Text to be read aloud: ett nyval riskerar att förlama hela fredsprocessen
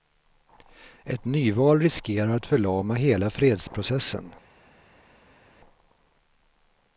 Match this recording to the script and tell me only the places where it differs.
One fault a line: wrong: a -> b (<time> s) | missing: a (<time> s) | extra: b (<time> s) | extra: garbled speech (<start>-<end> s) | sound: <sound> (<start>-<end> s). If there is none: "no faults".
no faults